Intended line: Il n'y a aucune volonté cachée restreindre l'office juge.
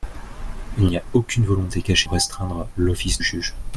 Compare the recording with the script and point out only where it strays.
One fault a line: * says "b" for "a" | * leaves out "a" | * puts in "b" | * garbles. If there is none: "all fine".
all fine